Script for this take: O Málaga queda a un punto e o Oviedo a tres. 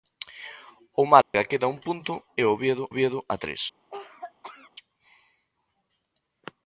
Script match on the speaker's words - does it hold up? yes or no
no